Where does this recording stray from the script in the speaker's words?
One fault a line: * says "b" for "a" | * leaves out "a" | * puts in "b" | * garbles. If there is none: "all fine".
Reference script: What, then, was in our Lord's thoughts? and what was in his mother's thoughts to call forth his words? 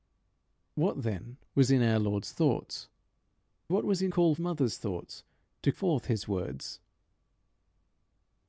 * leaves out "and"
* says "call" for "his"
* leaves out "call"